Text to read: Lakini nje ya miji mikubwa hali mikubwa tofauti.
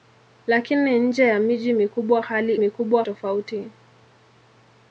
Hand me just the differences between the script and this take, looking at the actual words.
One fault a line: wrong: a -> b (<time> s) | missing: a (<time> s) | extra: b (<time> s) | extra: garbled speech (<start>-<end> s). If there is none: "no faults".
no faults